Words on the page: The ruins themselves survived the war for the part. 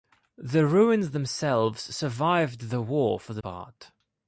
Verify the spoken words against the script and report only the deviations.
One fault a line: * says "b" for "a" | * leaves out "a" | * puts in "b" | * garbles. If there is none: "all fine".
all fine